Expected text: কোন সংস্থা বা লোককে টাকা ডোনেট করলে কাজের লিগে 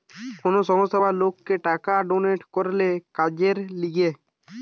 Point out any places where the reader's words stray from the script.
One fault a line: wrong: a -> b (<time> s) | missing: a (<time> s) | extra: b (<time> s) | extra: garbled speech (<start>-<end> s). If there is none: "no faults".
no faults